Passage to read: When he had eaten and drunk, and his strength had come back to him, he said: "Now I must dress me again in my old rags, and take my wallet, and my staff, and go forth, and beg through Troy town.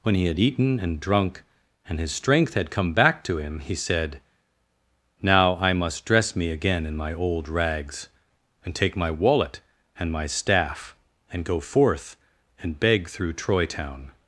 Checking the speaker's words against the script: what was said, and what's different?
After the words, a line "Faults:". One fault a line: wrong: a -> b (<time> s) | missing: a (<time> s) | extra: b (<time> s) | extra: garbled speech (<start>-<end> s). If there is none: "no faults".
When he had eaten and drunk, and his strength had come back to him, he said: "Now I must dress me again in my old rags, and take my wallet, and my staff, and go forth, and beg through Troy town.
Faults:
no faults